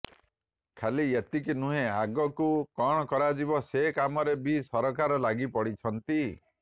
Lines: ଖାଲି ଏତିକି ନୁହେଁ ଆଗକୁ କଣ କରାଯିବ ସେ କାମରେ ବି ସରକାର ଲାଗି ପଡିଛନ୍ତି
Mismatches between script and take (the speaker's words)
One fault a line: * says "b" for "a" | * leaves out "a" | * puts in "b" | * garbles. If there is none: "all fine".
all fine